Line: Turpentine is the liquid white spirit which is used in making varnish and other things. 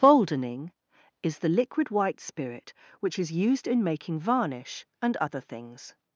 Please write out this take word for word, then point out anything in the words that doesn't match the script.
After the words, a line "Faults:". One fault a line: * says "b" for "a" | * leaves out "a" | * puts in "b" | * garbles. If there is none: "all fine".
Boldening is the liquid white spirit which is used in making varnish and other things.
Faults:
* says "Boldening" for "Turpentine"